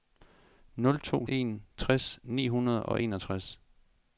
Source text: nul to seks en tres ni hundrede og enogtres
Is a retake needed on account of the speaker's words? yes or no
yes